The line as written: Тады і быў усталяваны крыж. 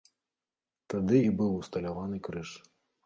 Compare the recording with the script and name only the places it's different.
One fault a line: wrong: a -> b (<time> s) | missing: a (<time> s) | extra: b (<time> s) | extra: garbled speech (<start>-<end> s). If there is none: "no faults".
no faults